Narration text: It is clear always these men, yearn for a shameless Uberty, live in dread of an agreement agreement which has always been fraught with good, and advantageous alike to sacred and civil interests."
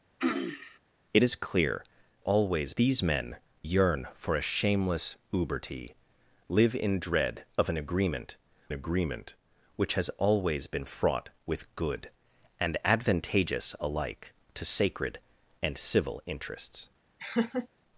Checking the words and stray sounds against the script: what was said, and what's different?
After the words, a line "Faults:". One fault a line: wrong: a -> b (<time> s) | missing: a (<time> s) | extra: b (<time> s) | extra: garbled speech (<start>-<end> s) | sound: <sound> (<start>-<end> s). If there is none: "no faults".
It is clear always these men, yearn for a shameless Uberty, live in dread of an agreement agreement which has always been fraught with good, and advantageous alike to sacred and civil interests."
Faults:
sound: throat clearing (0.2-0.8 s)
sound: laugh (17.2-17.7 s)